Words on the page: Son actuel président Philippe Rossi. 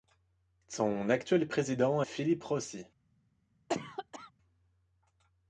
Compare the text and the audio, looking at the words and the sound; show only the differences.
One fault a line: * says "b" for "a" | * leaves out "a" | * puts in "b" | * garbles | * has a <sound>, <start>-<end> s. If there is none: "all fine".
* has a cough, 3.7-4.3 s